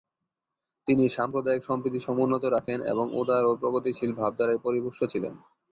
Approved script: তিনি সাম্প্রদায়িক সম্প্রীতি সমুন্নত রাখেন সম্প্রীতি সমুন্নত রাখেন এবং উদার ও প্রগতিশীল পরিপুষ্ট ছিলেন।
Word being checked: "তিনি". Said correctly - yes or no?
yes